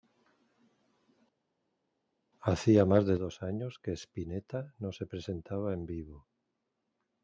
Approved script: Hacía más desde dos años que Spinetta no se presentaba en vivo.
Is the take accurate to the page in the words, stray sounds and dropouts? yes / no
no